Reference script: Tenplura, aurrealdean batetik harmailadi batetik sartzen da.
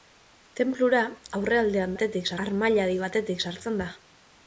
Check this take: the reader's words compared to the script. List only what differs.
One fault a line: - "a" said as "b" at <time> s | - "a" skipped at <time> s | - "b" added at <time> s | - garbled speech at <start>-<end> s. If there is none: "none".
none